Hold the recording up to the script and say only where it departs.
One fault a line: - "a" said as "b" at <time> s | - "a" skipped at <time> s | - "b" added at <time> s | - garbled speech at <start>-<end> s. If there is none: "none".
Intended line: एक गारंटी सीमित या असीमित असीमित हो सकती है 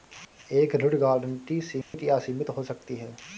- "ऋण" added at 0.8 s
- "असीमित" skipped at 2.5 s